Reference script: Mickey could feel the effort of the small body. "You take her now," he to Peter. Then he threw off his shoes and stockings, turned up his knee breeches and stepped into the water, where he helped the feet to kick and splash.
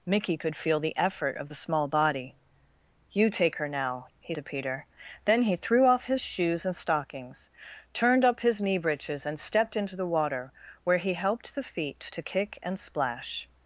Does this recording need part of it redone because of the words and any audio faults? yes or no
no